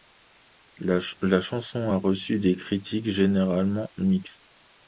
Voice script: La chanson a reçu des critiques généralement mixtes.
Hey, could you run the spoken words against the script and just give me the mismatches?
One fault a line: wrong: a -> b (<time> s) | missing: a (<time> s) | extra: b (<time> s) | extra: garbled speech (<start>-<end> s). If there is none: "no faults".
no faults